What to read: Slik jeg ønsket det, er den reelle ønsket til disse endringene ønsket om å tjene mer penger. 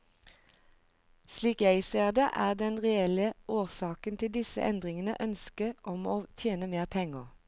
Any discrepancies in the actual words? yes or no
yes